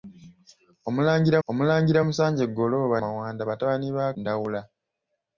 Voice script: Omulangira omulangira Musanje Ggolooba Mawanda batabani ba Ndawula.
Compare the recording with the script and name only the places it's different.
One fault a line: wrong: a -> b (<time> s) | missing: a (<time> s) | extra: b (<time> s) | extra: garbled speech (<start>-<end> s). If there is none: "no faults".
no faults